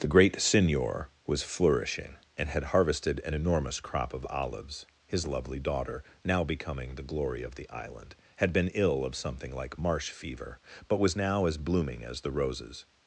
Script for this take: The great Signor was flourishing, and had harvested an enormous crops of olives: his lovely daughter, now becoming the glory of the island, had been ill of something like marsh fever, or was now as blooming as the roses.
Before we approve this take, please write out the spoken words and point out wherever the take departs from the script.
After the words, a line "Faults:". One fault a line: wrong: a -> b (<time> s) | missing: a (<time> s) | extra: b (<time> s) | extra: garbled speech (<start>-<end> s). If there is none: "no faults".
The great Signor was flourishing, and had harvested an enormous crop of olives: his lovely daughter, now becoming the glory of the island, had been ill of something like marsh fever, but was now as blooming as the roses.
Faults:
wrong: crops -> crop (3.8 s)
wrong: or -> but (10.9 s)